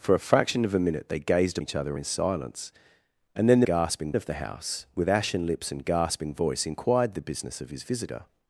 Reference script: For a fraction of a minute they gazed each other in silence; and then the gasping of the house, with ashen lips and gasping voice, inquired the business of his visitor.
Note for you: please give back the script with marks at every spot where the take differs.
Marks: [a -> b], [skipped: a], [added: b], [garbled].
For a fraction of a minute they gazed each other in silence; and then the gasping of the house, with ashen lips and gasping voice, inquired the business of his visitor.